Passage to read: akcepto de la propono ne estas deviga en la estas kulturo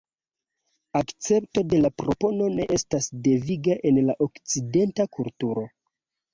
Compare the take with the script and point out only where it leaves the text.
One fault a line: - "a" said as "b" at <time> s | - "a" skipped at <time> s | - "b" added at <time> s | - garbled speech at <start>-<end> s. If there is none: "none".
- "estas" said as "okcidenta" at 4.3 s